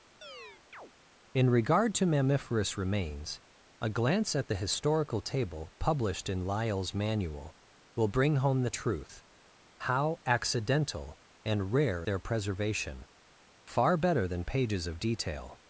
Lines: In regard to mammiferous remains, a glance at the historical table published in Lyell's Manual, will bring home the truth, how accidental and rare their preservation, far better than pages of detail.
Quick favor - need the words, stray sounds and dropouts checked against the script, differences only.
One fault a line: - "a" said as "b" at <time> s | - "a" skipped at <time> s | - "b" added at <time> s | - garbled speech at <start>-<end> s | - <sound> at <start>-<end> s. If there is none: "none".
- chirp at 0.2-0.9 s